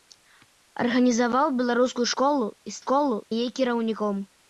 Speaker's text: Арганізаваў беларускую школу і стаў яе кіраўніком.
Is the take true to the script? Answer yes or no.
no